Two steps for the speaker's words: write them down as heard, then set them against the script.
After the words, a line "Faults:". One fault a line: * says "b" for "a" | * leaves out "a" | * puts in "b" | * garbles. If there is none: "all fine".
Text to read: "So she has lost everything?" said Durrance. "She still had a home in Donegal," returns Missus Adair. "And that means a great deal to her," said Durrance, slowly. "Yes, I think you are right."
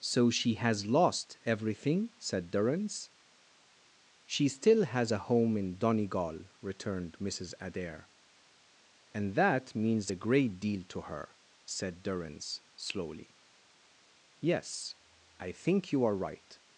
"So she has lost everything?" said Durrance. "She still has a home in Donegal," returned Missus Adair. "And that means a great deal to her," said Durrance, slowly. "Yes, I think you are right."
Faults:
* says "has" for "had"
* says "returned" for "returns"